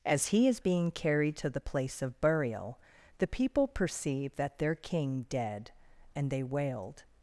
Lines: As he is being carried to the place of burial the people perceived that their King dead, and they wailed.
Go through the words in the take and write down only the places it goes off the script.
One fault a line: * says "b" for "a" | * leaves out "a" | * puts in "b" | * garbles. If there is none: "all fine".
all fine